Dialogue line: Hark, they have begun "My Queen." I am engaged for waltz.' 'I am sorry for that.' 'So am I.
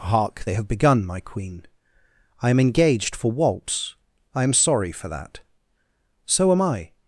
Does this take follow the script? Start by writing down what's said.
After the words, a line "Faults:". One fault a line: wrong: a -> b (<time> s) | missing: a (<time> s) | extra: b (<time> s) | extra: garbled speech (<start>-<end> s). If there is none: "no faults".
Hark, they have begun "My Queen." I am engaged for waltz.' 'I am sorry for that.' 'So am I.
Faults:
no faults